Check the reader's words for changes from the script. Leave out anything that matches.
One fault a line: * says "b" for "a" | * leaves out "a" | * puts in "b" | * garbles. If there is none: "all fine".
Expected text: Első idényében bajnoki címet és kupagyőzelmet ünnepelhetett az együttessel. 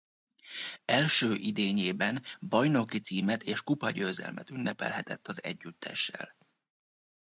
all fine